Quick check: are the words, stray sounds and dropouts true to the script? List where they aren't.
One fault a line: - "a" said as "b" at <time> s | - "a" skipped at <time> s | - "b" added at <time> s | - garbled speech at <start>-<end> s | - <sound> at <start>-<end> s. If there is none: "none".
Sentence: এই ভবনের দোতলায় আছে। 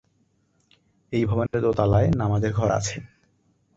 - dropout at 1.5-1.5 s
- "নামাজের ঘর" added at 2.1 s